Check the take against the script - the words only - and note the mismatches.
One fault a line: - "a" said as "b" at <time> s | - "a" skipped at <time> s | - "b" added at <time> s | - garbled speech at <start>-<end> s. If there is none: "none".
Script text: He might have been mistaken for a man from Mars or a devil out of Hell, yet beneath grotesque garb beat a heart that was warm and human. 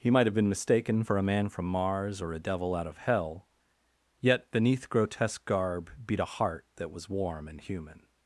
none